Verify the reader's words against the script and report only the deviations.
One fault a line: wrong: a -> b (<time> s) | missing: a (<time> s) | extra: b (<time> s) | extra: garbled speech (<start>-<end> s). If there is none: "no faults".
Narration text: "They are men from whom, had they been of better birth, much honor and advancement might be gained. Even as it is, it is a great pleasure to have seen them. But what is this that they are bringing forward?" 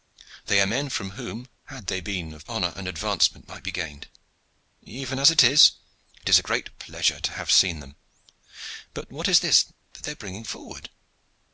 missing: better birth much (2.5 s)